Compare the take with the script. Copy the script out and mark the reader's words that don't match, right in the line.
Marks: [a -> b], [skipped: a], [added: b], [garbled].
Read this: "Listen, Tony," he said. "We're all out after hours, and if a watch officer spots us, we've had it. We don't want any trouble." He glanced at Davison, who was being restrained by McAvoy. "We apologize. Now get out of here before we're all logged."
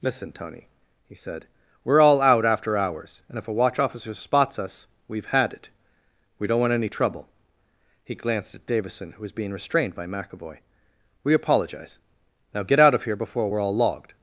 "Listen, Tony," he said. "We're all out after hours, and if a watch officer spots us, we've had it. We don't want any trouble." He glanced at Davison, who was being restrained by McAvoy. "We apologize. Now get out of here before we're all logged."